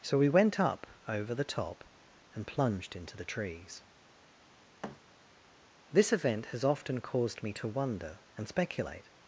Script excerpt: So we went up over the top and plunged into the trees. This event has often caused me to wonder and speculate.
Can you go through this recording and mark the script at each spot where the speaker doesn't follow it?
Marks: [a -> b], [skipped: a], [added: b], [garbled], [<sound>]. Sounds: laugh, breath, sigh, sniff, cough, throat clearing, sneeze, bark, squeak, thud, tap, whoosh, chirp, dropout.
So we went up over the top and plunged into the trees. [thud] This event has often caused me to wonder and speculate.